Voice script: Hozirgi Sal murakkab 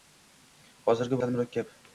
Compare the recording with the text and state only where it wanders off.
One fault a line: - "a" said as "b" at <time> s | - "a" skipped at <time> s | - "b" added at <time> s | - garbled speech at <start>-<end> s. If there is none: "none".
none